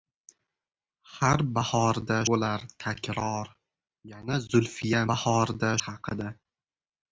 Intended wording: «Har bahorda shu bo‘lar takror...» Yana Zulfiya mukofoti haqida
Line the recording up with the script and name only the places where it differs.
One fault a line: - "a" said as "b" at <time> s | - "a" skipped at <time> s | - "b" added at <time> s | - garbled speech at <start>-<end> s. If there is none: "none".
- "shu" skipped at 2.1 s
- "mukofoti" said as "bahorda" at 5.1 s